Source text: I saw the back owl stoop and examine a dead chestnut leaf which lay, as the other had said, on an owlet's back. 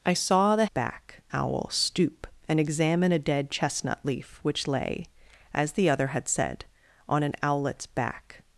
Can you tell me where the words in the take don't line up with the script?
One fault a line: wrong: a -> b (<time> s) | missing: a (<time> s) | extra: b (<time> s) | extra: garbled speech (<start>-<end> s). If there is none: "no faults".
no faults